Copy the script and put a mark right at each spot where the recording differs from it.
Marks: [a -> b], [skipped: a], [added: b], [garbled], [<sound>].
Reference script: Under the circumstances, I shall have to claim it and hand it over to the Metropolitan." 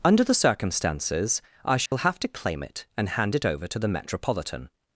Under the circumstances, I shall [dropout] have to claim it and hand it over to the Metropolitan."